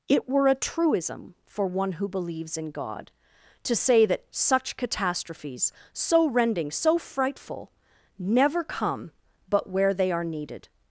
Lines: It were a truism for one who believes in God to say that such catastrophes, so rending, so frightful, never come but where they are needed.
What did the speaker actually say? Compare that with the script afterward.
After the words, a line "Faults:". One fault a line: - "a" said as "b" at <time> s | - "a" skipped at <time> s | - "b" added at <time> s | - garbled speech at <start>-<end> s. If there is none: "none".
It were a truism for one who believes in God to say that such catastrophes, so rending, so frightful, never come but where they are needed.
Faults:
none